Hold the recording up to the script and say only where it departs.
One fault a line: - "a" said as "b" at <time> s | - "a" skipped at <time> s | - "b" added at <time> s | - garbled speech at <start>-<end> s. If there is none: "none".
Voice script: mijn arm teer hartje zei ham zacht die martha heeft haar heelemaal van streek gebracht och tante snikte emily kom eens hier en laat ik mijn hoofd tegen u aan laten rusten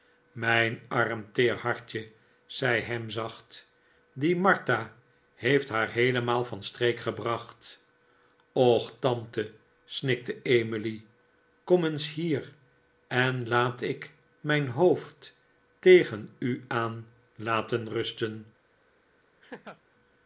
none